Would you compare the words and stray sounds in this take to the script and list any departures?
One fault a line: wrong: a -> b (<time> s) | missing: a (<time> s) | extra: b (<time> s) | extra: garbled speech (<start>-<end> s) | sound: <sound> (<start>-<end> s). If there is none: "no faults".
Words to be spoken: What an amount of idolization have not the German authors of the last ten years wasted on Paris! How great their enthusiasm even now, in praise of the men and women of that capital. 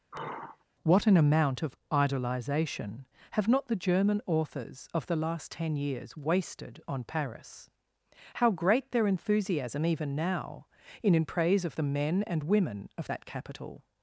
sound: sigh (0.1-0.6 s)
extra: in (11.1 s)